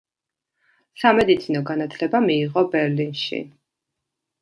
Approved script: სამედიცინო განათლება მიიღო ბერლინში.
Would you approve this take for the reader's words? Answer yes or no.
yes